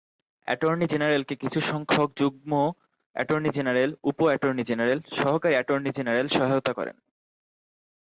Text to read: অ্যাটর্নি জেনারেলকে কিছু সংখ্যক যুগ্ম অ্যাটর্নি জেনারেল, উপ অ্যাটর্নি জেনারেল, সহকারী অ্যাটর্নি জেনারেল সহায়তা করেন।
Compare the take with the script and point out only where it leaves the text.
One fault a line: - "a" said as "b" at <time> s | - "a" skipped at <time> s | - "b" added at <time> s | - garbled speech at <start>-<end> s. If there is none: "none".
none